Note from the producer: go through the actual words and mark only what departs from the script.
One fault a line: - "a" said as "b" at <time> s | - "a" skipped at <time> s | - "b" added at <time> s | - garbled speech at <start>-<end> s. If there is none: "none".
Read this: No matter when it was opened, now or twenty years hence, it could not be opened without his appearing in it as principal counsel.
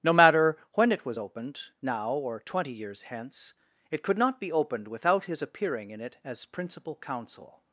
none